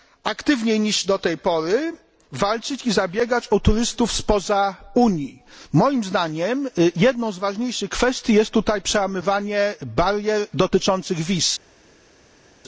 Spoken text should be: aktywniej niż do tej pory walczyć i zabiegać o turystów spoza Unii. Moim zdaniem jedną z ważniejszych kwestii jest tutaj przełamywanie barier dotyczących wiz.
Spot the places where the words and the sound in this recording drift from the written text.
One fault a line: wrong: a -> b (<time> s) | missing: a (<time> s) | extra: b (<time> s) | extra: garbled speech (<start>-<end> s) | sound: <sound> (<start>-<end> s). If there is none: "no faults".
no faults